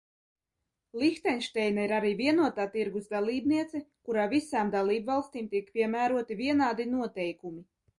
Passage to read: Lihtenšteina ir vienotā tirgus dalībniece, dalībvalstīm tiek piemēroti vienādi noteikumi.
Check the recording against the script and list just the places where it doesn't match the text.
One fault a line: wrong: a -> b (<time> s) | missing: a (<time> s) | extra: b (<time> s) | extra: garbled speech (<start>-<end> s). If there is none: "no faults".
extra: arī (2.0 s)
extra: kurā visām (4.1 s)